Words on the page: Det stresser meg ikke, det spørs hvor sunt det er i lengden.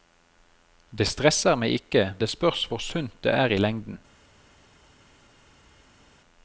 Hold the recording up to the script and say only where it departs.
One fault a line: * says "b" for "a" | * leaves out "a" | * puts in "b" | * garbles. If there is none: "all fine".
all fine